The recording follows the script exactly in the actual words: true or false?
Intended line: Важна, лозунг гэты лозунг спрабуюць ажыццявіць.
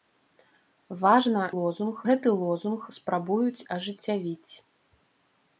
true